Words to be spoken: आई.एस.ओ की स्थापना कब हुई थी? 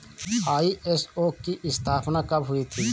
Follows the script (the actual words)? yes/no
yes